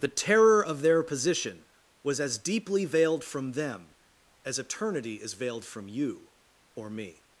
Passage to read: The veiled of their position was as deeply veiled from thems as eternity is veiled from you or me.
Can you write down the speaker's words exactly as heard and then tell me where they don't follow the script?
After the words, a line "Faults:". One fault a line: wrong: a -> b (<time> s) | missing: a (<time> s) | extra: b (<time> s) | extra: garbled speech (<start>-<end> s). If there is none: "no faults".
The terror of their position was as deeply veiled from them as eternity is veiled from you or me.
Faults:
wrong: veiled -> terror (0.1 s)
wrong: thems -> them (3.5 s)